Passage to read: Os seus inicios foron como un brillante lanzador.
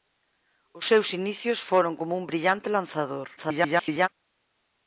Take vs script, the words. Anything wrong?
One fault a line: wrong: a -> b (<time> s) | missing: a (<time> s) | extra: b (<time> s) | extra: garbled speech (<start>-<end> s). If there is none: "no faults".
extra: garbled speech (3.4-4.1 s)